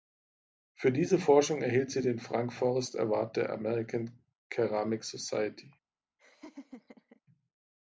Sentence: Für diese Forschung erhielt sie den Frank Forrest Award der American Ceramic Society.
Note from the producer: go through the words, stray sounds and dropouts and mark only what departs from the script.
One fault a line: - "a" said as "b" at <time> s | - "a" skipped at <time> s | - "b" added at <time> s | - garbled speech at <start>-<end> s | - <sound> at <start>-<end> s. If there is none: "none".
- laugh at 6.2-7.2 s